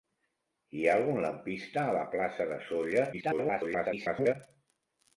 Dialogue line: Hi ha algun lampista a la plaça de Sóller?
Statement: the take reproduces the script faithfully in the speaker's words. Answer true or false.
false